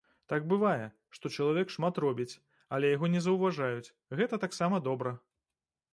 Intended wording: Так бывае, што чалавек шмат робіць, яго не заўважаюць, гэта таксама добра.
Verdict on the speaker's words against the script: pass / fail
fail